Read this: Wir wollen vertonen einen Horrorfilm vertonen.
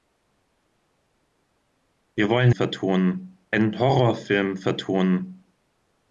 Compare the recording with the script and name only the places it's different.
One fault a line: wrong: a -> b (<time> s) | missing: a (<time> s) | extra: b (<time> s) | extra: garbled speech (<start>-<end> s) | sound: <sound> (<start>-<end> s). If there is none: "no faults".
no faults